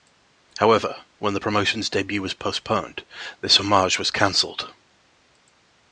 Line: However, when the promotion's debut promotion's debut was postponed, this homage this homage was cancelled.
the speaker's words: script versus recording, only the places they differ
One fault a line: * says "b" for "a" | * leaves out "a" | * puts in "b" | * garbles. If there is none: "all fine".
* leaves out "promotion's debut"
* leaves out "this homage"